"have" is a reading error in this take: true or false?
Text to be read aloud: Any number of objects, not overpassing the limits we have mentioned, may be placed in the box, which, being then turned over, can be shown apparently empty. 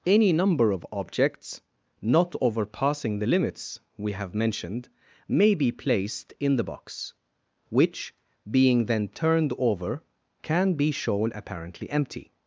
false